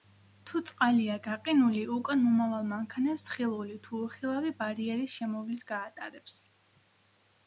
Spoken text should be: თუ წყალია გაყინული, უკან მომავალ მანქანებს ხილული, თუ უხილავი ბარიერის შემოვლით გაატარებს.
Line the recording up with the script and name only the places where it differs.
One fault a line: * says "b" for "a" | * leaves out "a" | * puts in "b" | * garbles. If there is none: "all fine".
all fine